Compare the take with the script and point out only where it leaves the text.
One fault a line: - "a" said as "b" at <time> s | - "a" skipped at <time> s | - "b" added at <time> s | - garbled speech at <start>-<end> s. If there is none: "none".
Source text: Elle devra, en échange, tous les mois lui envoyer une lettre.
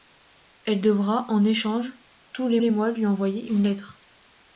- "les" added at 2.6 s